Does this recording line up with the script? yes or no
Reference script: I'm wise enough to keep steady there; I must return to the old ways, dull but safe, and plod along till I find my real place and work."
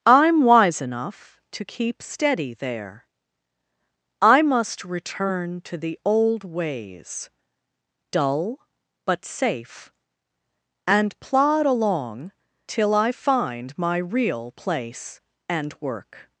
yes